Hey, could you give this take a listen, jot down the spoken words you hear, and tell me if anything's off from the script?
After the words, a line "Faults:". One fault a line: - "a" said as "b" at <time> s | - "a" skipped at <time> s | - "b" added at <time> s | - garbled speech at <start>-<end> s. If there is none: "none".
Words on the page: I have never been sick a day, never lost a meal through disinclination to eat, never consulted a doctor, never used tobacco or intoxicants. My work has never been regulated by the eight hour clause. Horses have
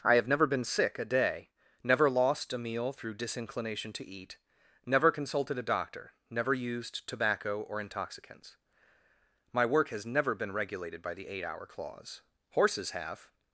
I have never been sick a day, never lost a meal through disinclination to eat, never consulted a doctor, never used tobacco or intoxicants. My work has never been regulated by the eight hour clause. Horses have
Faults:
none